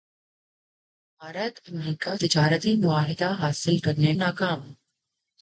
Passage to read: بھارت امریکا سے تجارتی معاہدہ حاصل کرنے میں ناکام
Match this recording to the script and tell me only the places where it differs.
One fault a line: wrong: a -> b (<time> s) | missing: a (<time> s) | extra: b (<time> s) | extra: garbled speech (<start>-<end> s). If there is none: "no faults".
missing: سے (2.2 s)
missing: میں (4.1 s)